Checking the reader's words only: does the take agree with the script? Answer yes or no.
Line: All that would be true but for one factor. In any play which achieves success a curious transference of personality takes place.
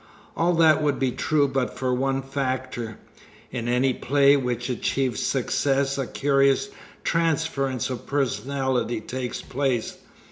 yes